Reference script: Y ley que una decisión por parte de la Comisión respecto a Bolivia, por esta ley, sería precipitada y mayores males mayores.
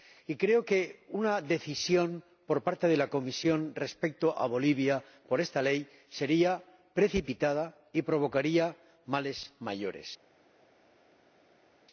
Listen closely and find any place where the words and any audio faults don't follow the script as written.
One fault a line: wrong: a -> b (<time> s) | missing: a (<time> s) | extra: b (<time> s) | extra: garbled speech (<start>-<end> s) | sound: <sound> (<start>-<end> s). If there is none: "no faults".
wrong: ley -> creo (0.3 s)
wrong: mayores -> provocaría (8.0 s)